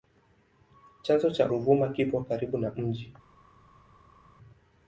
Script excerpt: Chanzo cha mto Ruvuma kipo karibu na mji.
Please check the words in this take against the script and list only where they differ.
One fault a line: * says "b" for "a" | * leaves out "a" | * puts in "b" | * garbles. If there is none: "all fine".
* leaves out "mto"